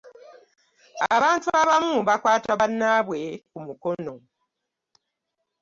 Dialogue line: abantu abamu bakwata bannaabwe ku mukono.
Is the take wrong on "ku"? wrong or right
right